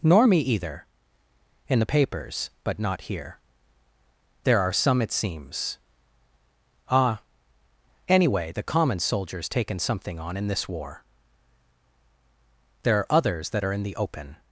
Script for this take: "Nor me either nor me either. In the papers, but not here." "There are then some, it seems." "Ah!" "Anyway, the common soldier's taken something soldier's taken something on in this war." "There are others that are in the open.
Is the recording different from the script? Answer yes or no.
yes